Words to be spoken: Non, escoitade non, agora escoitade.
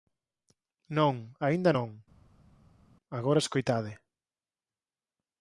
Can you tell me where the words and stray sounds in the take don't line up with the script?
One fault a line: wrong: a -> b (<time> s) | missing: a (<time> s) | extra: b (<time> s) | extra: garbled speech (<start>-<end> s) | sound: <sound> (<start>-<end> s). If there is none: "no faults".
wrong: escoitade -> aínda (1.5 s)